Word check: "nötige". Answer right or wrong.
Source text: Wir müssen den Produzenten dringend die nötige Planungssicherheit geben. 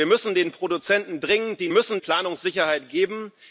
wrong